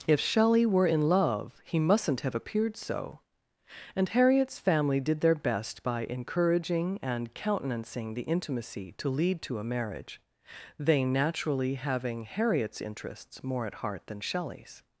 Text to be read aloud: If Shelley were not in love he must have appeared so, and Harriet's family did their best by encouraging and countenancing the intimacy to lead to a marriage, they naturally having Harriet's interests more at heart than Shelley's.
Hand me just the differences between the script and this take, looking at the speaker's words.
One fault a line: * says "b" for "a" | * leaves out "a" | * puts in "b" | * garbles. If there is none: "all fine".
* leaves out "not"
* says "mustn't" for "must"